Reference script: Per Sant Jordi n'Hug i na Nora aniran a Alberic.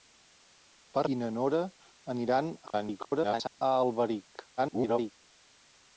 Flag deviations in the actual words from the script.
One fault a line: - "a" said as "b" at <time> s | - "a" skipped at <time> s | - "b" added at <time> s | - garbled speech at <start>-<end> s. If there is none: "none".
- "Sant Jordi n'Hug" skipped at 1.0 s
- garbled speech at 2.7-3.6 s
- garbled speech at 4.6-5.1 s